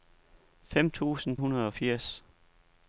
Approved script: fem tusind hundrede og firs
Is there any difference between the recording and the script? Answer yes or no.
no